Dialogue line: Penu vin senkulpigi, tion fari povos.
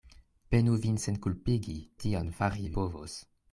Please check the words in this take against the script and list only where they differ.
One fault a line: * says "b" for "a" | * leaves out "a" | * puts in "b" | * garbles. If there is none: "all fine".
all fine